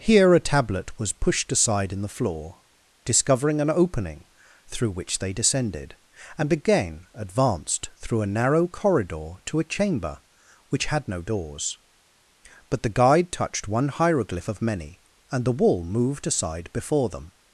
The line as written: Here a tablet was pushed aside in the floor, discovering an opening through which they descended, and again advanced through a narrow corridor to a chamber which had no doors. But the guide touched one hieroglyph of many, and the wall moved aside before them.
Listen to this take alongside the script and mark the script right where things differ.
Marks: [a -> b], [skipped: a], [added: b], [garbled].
Here a tablet was pushed aside in the floor, discovering an opening through which they descended, and again advanced through a narrow corridor to a chamber which had no doors. But the guide touched one hieroglyph of many, and the wall moved aside before them.